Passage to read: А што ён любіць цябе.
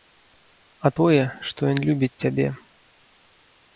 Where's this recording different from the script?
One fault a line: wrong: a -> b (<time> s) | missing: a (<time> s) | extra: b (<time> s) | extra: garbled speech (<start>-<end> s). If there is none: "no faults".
extra: тое (1.0 s)